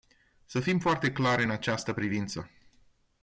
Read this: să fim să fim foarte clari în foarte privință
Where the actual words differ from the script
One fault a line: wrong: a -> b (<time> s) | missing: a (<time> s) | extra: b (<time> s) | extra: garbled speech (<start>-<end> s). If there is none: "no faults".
missing: să fim (0.8 s)
wrong: foarte -> această (1.5 s)